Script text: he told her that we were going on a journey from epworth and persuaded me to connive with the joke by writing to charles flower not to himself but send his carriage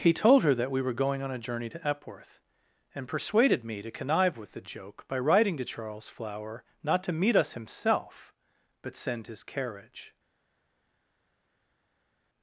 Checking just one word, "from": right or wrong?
wrong